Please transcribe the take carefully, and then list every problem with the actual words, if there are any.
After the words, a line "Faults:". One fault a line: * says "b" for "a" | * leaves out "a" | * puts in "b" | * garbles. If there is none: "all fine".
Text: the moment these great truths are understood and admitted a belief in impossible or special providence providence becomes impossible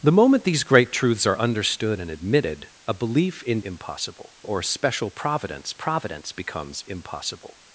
the moment these great truths are understood and admitted a belief in impossible or special providence providence becomes impossible
Faults:
all fine